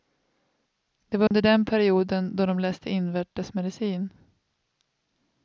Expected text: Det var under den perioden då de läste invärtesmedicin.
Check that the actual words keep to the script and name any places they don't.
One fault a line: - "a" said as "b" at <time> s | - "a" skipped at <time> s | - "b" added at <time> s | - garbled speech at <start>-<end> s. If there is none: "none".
none